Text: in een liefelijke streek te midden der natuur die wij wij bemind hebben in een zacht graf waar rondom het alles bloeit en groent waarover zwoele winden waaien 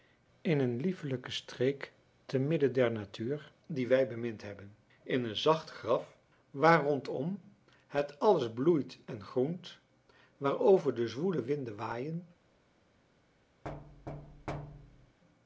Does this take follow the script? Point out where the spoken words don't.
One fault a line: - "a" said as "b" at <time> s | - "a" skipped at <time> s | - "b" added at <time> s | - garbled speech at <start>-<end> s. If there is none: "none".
- "wij" skipped at 4.1 s
- "de" added at 10.9 s